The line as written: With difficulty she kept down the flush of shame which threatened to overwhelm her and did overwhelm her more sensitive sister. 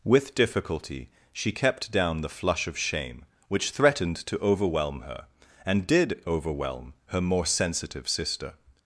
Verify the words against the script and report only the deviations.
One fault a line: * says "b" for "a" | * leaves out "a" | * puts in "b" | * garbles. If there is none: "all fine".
all fine